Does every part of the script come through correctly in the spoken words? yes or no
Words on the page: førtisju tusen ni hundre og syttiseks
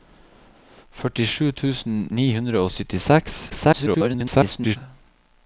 no